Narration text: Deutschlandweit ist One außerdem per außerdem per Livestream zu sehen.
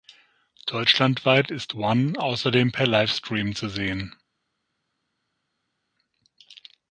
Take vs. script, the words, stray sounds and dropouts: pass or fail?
fail